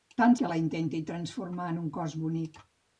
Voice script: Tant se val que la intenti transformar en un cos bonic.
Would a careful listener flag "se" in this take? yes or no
yes